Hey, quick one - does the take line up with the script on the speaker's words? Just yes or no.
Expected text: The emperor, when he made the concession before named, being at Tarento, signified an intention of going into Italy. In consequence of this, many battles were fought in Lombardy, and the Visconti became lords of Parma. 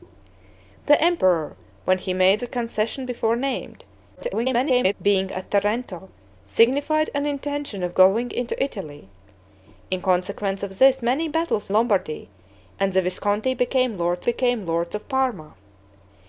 no